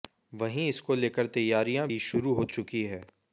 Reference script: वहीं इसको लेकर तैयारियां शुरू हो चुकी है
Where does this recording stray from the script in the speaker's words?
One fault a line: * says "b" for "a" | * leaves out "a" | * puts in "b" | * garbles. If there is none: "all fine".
* puts in "भी"